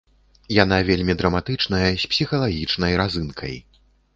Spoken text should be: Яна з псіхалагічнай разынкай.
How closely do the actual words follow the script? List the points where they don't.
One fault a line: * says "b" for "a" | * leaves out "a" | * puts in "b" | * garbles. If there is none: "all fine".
* puts in "вельмі драматычная"